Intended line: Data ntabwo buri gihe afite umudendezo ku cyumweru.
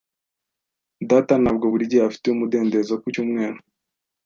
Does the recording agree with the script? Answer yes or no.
yes